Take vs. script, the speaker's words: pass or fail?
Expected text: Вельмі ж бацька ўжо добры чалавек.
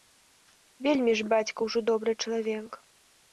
pass